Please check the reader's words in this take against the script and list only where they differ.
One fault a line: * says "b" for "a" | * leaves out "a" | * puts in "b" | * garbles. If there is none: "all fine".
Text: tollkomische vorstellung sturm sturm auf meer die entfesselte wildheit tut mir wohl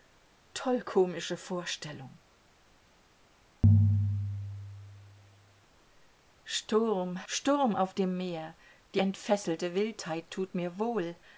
* puts in "dem"